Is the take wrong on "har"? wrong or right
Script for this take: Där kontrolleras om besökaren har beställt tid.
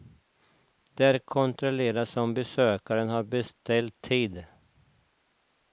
right